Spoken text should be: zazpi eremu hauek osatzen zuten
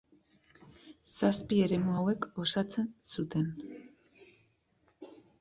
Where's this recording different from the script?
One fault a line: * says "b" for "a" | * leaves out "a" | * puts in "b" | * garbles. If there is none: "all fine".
all fine